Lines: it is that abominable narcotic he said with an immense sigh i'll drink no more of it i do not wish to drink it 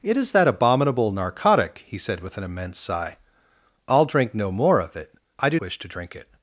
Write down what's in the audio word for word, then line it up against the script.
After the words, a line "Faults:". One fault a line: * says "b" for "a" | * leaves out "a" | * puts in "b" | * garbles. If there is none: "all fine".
it is that abominable narcotic he said with an immense sigh i'll drink no more of it i do wish to drink it
Faults:
* leaves out "not"